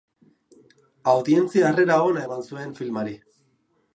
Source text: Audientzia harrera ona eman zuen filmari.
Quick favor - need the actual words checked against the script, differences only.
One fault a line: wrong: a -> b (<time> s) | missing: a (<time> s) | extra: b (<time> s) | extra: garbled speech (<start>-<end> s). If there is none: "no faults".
no faults